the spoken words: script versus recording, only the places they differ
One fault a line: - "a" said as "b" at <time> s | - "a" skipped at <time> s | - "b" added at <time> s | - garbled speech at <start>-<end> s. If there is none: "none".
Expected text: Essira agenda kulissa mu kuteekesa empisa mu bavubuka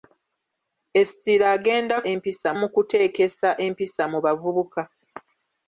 - "kulissa" said as "empisa" at 2.1 s